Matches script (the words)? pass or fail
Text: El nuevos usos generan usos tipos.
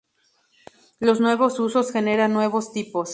fail